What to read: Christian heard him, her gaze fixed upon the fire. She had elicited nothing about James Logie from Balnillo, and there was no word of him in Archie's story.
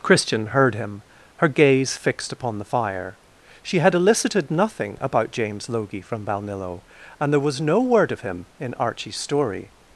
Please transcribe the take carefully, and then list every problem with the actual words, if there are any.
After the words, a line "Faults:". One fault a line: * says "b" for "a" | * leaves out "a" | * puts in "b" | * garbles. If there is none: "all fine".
Christian heard him, her gaze fixed upon the fire. She had elicited nothing about James Logie from Balnillo, and there was no word of him in Archie's story.
Faults:
all fine